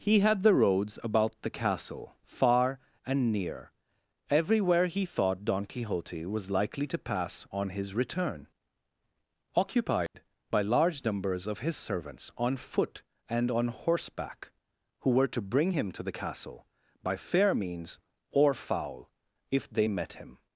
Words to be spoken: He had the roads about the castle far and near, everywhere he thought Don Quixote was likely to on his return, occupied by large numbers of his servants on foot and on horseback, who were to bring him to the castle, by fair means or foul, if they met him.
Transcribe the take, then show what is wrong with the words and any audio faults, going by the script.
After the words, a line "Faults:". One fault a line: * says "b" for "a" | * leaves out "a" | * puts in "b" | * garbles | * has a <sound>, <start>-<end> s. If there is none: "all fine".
He had the roads about the castle far and near, everywhere he thought Don Quixote was likely to pass on his return, occupied by large numbers of his servants on foot and on horseback, who were to bring him to the castle, by fair means or foul, if they met him.
Faults:
* puts in "pass"
* has a dropout, 10.1-10.1 s